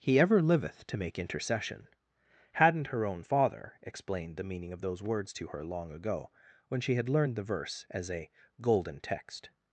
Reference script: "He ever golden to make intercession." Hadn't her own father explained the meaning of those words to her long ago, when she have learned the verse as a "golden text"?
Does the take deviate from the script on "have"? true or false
true